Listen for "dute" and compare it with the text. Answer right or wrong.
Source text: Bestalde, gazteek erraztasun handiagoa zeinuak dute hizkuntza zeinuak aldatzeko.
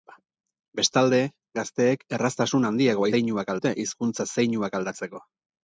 right